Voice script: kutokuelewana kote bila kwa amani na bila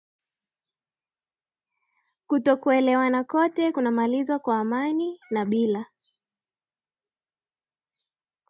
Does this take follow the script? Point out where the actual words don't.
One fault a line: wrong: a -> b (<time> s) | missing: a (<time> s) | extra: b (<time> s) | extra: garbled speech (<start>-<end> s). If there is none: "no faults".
wrong: bila -> kunamalizwa (3.7 s)